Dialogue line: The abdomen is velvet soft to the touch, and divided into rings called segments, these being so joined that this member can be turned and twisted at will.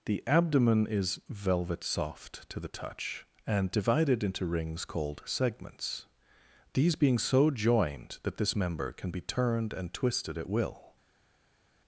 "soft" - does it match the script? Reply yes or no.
yes